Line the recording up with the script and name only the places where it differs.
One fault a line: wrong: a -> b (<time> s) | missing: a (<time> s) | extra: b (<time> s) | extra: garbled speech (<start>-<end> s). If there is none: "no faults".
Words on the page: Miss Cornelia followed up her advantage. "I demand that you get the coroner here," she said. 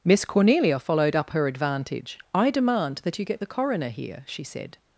no faults